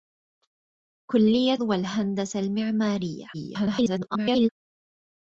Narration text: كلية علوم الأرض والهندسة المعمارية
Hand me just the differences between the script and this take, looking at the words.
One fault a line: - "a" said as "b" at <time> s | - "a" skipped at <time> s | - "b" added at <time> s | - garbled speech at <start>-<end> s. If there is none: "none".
- "علوم الأرض" skipped at 1.6 s
- garbled speech at 3.3-4.5 s